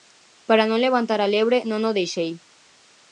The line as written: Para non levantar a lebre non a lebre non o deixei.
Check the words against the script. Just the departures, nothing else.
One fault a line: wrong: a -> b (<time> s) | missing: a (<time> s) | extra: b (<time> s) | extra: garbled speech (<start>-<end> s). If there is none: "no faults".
missing: a lebre non (1.8 s)